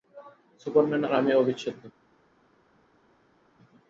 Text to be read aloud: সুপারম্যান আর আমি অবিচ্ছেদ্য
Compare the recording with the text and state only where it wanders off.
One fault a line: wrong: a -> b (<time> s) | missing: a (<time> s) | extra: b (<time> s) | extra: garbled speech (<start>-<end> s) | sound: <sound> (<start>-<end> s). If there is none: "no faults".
no faults